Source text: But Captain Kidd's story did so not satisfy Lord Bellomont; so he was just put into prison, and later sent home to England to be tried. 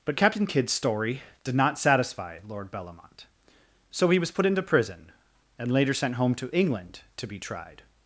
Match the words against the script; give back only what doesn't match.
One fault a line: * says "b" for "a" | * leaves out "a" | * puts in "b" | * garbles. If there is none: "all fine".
* leaves out "so"
* leaves out "just"